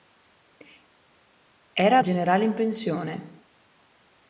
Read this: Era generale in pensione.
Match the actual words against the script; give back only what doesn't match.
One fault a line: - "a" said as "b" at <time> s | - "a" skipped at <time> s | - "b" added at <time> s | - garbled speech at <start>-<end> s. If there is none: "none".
none